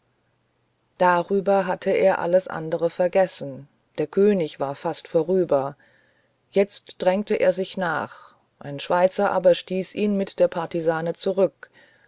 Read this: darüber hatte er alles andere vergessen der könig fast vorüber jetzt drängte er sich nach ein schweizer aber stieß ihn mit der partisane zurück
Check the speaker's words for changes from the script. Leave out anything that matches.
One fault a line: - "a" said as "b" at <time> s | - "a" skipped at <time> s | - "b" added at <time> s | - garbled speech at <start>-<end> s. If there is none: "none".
- "war" added at 4.6 s